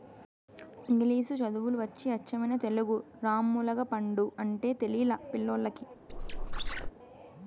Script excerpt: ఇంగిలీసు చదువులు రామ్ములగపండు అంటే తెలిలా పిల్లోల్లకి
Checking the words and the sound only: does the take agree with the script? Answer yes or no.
no